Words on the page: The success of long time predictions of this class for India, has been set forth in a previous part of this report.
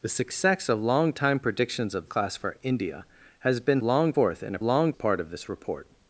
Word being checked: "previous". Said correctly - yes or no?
no